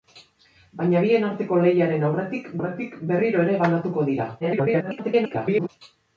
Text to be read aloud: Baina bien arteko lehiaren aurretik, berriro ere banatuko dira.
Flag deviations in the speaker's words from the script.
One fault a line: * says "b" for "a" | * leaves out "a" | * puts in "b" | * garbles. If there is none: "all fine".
* puts in "aurretik"
* garbles